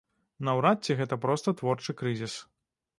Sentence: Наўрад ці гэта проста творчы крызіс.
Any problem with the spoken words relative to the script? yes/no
no